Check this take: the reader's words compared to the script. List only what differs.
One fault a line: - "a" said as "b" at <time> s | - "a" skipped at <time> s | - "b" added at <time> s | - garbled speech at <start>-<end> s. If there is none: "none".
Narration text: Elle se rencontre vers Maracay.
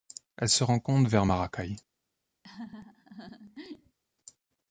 none